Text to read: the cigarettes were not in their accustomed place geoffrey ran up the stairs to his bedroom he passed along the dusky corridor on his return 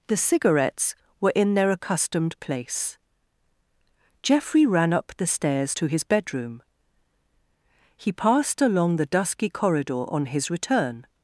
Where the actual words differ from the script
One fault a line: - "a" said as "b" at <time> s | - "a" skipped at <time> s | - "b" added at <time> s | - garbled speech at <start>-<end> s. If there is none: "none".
- "not" skipped at 1.3 s